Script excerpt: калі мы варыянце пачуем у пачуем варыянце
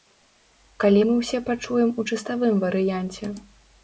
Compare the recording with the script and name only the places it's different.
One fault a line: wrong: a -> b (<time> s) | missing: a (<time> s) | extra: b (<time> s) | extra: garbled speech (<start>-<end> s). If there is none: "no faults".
wrong: варыянце -> ўсе (1.2 s)
wrong: пачуем -> чыставым (2.1 s)